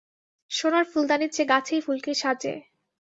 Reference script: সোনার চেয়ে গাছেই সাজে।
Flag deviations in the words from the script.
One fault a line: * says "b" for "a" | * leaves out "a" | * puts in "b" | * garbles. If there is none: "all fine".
* puts in "ফুলদানির"
* puts in "ফুলকে"